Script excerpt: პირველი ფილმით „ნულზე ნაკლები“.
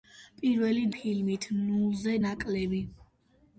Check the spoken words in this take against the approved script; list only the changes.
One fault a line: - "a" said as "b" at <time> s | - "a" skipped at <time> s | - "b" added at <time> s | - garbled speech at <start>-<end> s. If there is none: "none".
none